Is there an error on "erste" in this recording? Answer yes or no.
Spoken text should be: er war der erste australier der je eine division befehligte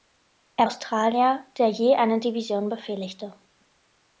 yes